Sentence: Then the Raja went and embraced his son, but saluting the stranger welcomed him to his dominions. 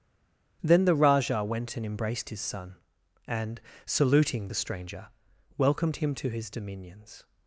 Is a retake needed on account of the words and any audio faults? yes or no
yes